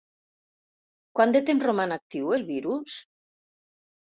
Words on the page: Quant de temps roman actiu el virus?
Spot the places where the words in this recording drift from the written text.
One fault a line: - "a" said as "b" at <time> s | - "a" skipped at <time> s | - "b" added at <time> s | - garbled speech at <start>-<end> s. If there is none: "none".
none